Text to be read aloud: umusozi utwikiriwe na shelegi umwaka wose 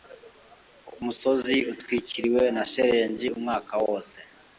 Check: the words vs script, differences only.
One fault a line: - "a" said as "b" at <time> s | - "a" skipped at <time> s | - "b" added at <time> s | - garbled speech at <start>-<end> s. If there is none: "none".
none